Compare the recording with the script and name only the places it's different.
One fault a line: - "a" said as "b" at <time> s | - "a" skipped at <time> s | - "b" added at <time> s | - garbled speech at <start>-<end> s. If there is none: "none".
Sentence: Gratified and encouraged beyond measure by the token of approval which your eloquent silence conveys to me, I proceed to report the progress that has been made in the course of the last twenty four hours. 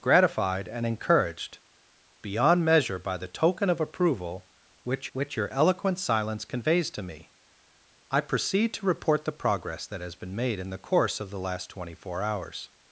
- "which" added at 5.1 s